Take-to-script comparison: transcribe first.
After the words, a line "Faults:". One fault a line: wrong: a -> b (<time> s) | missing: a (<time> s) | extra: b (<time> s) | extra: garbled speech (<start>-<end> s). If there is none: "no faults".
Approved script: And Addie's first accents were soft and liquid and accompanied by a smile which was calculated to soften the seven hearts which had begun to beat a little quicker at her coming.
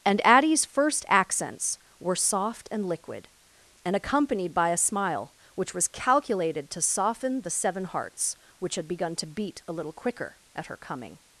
And Addie's first accents were soft and liquid and accompanied by a smile which was calculated to soften the seven hearts which had begun to beat a little quicker at her coming.
Faults:
no faults